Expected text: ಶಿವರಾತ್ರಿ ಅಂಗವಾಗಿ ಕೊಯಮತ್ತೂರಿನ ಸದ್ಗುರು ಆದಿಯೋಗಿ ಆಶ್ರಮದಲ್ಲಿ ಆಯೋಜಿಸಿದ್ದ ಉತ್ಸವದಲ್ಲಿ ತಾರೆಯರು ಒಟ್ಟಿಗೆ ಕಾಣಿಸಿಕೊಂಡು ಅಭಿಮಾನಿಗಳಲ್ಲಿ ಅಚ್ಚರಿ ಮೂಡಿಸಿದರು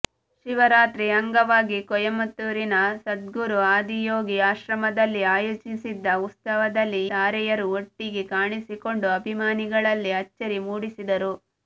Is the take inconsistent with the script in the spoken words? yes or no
no